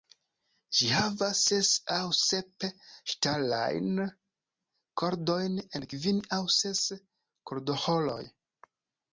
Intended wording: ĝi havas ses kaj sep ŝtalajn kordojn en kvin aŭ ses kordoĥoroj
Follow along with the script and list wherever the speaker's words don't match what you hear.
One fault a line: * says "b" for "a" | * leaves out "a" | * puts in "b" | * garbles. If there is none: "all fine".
* says "aŭ" for "kaj"